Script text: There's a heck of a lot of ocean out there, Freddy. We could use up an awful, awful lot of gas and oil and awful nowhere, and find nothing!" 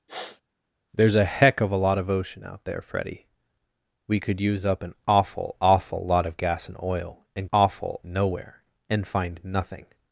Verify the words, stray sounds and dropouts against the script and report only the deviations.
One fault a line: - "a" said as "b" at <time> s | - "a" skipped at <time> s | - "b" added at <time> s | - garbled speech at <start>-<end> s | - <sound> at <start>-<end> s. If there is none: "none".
- sniff at 0.1-0.4 s